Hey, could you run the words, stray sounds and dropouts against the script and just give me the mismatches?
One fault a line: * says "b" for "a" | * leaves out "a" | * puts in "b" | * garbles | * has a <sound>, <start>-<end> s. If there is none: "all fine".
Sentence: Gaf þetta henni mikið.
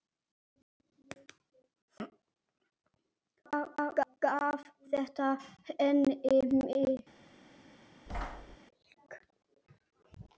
* has a thud, 8.1-8.6 s